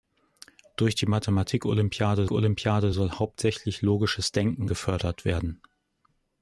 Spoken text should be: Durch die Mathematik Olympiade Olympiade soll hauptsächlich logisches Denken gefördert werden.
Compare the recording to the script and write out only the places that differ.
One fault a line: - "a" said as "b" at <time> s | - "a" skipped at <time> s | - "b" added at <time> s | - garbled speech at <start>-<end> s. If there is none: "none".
none